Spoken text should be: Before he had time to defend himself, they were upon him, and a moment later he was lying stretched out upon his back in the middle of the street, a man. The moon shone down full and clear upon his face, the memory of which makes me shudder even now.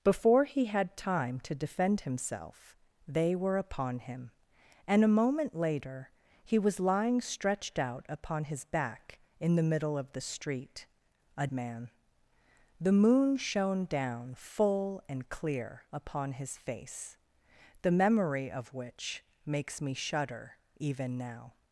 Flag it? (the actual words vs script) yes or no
no